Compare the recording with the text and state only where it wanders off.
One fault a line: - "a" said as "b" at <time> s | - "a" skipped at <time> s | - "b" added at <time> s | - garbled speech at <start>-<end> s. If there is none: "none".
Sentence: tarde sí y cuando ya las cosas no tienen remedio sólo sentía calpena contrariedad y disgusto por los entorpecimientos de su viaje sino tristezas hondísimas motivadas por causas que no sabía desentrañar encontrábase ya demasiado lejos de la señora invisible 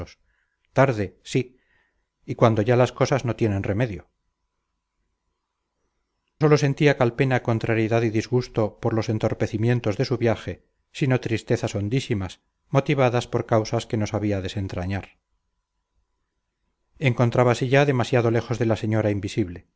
none